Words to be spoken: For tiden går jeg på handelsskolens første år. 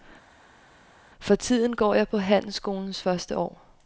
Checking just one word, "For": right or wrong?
right